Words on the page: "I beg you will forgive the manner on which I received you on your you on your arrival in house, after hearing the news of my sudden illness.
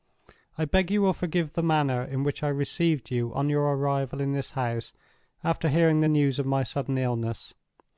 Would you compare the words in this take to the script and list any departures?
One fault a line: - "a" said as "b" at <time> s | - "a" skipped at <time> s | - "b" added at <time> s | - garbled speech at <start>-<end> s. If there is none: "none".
- "on" said as "in" at 2.0 s
- "you on your" skipped at 3.6 s
- "this" added at 4.3 s